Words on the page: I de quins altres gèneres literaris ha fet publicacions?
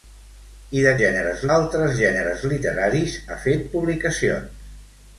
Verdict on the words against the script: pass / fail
fail